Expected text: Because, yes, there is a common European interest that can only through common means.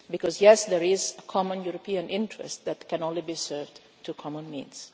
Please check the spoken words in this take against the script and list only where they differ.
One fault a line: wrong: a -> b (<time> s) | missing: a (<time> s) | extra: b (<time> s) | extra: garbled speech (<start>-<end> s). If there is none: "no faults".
extra: be served (3.2 s)